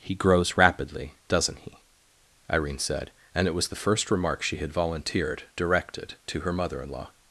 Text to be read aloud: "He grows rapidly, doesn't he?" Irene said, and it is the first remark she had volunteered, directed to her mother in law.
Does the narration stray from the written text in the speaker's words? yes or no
yes